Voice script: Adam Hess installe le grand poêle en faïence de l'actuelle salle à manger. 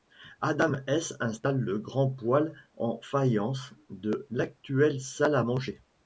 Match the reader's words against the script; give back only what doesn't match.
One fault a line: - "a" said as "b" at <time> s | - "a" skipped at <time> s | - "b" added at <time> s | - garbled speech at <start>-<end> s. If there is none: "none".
none